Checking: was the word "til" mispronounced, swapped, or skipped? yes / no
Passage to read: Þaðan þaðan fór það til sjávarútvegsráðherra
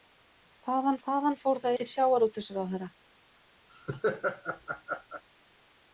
no